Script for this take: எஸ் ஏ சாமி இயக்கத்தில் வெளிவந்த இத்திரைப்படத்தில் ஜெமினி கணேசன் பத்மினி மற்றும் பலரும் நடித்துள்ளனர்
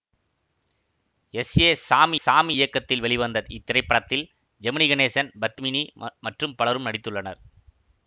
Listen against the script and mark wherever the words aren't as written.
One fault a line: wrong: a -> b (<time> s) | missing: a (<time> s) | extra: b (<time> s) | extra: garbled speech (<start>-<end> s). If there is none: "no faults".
extra: சாமி (2.2 s)